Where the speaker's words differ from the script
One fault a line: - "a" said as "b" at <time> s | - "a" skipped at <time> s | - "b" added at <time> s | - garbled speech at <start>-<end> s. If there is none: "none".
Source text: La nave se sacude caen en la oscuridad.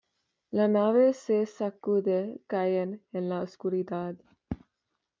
none